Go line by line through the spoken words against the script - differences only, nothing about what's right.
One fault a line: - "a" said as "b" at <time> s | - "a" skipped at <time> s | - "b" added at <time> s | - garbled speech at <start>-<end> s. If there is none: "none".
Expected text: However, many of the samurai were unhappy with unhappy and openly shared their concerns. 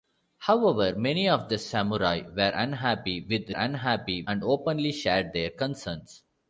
none